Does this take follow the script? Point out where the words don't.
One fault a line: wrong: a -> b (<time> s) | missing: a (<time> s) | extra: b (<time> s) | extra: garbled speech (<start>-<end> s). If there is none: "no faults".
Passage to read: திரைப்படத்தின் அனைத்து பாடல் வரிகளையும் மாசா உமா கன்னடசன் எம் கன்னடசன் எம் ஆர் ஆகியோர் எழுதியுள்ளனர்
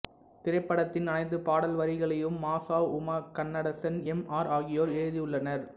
missing: கன்னடசன் எம் (4.2 s)